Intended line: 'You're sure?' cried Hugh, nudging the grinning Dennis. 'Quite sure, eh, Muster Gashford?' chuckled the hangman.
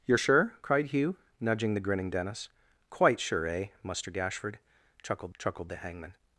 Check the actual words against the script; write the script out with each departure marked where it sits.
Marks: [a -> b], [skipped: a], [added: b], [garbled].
'You're sure?' cried Hugh, nudging the grinning Dennis. 'Quite sure, eh, Muster Gashford?' chuckled [added: chuckled] the hangman.